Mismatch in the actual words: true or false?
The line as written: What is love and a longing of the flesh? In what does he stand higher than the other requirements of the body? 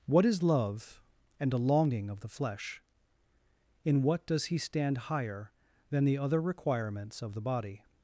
false